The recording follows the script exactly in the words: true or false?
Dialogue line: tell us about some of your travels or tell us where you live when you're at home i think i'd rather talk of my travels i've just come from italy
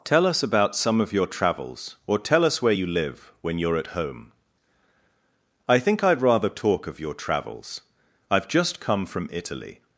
false